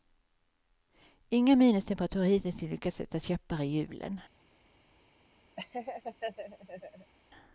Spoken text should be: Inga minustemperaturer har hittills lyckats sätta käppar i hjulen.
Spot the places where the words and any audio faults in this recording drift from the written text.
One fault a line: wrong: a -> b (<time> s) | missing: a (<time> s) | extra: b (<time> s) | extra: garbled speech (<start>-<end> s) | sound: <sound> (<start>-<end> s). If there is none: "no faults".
sound: laugh (5.6-7.1 s)